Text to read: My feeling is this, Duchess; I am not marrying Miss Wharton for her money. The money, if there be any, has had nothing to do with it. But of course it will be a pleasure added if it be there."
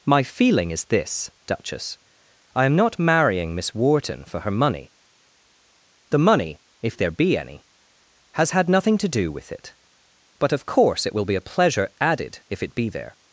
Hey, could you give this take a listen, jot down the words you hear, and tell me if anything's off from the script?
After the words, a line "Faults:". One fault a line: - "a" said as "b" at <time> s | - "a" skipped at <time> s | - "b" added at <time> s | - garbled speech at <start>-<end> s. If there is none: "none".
My feeling is this, Duchess; I am not marrying Miss Wharton for her money. The money, if there be any, has had nothing to do with it. But of course it will be a pleasure added if it be there."
Faults:
none